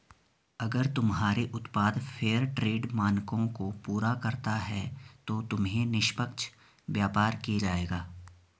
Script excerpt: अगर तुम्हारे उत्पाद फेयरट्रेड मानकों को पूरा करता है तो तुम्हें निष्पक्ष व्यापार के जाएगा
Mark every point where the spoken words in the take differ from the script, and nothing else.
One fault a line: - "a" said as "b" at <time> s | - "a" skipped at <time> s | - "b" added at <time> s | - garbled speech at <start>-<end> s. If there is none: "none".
none